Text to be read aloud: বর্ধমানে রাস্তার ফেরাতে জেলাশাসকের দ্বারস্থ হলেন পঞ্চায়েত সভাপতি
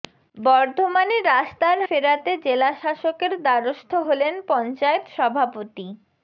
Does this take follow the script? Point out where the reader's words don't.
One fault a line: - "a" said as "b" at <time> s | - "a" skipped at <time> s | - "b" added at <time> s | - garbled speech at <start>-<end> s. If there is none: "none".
none